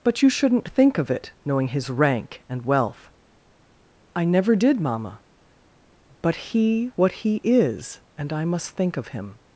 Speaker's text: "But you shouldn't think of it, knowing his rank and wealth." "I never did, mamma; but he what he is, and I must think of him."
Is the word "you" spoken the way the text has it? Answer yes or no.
yes